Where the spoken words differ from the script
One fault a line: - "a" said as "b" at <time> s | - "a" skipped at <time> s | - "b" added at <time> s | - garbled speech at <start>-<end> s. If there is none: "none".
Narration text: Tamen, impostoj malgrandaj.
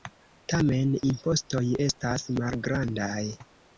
- "estas" added at 1.9 s